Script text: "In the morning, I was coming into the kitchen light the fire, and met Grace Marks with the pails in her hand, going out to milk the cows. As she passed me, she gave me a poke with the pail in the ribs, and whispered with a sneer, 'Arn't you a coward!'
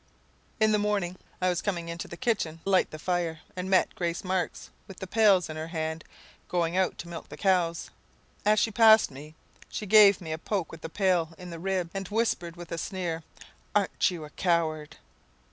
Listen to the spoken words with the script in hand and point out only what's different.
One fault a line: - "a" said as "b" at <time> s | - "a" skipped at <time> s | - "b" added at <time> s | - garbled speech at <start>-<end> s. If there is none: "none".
none